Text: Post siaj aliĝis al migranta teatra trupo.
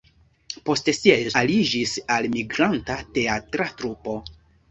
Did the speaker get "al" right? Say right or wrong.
right